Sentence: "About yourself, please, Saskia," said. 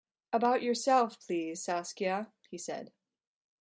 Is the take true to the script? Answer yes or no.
no